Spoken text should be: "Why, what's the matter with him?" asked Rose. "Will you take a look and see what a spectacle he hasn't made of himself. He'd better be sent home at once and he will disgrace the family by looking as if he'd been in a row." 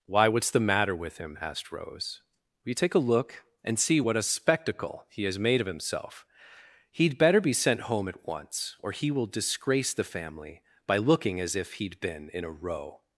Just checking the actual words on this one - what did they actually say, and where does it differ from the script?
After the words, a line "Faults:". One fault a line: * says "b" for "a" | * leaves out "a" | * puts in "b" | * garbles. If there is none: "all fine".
"Why, what's the matter with him?" asked Rose. "Will you take a look and see what a spectacle he has made of himself. He'd better be sent home at once or he will disgrace the family by looking as if he'd been in a row."
Faults:
* says "has" for "hasn't"
* says "or" for "and"